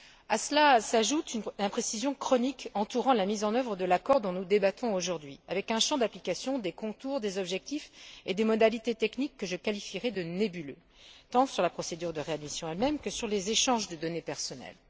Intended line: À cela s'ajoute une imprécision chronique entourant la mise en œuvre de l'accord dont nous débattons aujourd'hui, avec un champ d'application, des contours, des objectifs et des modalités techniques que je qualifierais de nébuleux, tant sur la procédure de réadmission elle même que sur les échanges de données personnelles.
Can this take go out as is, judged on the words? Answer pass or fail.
pass